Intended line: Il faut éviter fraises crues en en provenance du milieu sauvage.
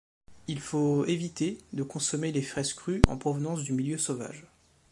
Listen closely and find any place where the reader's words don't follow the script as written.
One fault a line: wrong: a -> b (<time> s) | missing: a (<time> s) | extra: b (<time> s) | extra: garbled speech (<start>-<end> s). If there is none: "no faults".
extra: de consommer les (1.7 s)
missing: en (3.2 s)